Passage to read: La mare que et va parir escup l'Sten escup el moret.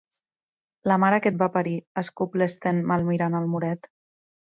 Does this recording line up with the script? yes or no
no